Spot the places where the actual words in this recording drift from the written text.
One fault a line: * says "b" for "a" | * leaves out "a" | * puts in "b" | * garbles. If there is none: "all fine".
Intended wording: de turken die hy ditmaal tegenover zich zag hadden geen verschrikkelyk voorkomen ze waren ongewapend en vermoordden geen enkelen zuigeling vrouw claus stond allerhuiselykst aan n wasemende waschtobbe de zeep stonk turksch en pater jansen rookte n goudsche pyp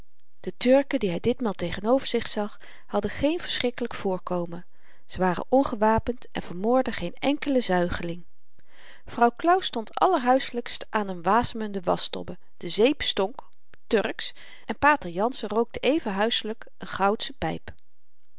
* puts in "even huiselyk"